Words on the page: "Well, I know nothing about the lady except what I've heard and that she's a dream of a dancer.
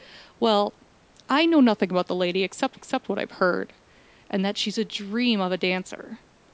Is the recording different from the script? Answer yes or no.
yes